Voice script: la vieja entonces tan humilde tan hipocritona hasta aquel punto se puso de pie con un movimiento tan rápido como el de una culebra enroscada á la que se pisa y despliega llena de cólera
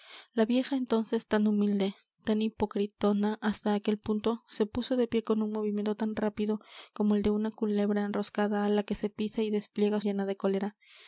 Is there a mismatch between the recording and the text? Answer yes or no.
no